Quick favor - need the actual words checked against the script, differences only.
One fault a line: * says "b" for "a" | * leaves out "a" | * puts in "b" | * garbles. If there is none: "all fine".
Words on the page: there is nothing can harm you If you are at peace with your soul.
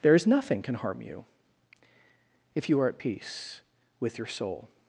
all fine